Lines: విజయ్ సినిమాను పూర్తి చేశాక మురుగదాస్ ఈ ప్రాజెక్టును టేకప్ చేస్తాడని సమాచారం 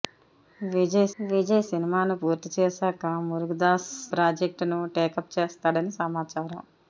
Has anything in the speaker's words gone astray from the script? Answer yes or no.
yes